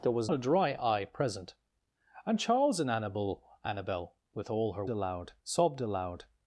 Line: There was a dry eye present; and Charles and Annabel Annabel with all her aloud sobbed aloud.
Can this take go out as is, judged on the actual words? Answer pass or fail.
pass